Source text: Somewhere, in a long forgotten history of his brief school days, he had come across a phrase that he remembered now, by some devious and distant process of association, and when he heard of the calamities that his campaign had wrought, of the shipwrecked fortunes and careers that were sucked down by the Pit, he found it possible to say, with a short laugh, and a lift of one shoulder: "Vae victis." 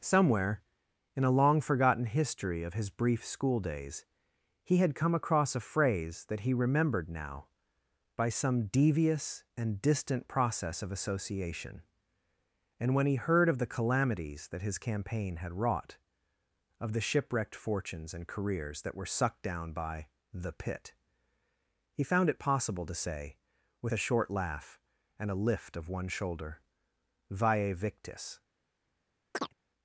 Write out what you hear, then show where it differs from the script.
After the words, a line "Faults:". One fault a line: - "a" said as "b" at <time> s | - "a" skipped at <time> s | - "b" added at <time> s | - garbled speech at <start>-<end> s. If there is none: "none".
Somewhere, in a long forgotten history of his brief school days, he had come across a phrase that he remembered now, by some devious and distant process of association, and when he heard of the calamities that his campaign had wrought, of the shipwrecked fortunes and careers that were sucked down by the Pit, he found it possible to say, with a short laugh, and a lift of one shoulder: "Vae victis."
Faults:
none